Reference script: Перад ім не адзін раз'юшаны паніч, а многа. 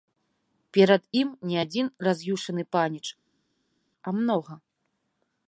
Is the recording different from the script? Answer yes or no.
no